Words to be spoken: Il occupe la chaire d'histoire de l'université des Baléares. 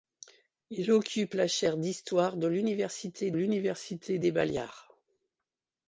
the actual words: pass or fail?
fail